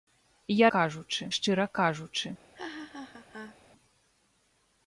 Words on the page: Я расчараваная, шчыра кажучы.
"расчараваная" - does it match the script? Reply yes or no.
no